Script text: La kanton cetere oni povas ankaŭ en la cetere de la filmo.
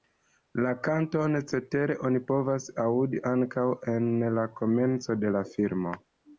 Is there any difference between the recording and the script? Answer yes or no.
yes